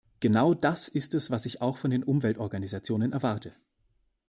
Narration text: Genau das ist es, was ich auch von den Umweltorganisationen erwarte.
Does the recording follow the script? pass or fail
pass